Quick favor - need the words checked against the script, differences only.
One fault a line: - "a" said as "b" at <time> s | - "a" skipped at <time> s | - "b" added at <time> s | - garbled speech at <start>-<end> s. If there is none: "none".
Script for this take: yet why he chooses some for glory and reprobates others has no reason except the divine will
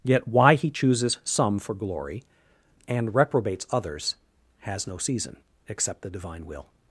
- "reason" said as "season" at 5.0 s